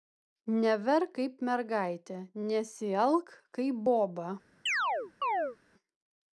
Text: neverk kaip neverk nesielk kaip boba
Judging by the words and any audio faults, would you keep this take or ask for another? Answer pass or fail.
fail